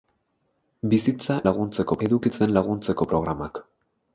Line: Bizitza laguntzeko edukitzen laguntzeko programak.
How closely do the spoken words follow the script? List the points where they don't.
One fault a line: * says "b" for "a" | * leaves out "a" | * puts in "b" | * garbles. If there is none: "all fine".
all fine